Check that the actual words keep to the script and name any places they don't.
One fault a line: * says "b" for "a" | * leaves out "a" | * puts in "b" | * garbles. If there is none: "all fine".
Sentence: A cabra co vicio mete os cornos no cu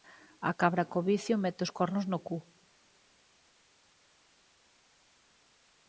all fine